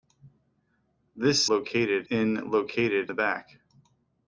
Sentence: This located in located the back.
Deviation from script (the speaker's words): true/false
false